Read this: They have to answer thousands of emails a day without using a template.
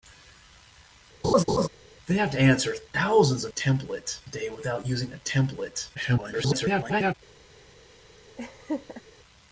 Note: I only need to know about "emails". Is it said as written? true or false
false